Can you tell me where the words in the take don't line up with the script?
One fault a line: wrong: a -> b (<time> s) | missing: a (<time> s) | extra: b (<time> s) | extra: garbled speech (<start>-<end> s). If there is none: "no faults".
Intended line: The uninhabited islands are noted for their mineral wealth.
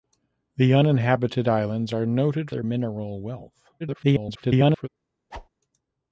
missing: for (2.5 s)
extra: garbled speech (3.8-4.9 s)